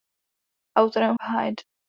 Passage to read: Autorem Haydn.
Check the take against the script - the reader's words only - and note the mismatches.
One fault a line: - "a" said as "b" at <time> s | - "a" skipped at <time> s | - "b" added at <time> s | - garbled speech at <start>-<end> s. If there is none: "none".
none